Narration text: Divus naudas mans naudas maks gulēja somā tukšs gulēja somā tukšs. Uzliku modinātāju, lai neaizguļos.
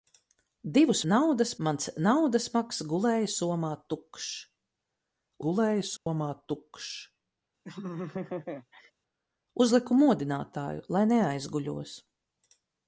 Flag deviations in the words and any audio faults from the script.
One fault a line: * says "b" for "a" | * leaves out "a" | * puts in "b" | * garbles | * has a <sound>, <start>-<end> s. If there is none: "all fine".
* has a dropout, 6.0-6.1 s
* has a laugh, 7.6-8.9 s